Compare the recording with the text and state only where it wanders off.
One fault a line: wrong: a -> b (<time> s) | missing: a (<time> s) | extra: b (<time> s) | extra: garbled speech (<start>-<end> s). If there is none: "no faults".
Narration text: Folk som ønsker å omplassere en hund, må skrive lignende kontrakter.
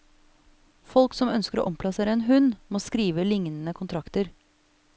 no faults